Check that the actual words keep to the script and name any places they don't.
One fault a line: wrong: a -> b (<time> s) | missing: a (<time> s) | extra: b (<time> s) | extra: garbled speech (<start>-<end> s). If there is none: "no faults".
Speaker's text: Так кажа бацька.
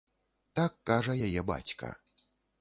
extra: яе (1.3 s)